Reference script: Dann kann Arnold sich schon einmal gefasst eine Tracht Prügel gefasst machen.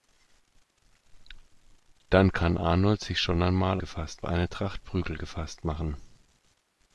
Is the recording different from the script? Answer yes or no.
no